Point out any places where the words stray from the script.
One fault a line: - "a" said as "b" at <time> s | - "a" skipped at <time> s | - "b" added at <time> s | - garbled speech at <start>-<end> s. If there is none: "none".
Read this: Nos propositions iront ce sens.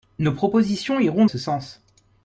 none